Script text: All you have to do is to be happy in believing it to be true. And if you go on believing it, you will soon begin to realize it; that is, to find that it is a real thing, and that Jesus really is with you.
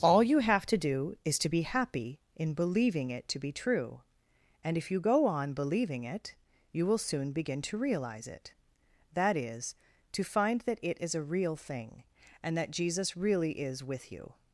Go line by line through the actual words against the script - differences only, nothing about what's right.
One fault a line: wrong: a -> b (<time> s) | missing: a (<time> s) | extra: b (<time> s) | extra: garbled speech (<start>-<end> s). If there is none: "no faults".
no faults